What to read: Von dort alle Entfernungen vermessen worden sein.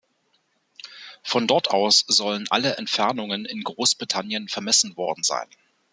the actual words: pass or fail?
fail